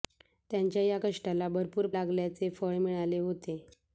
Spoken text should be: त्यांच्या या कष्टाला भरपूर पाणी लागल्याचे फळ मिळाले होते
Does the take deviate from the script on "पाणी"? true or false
true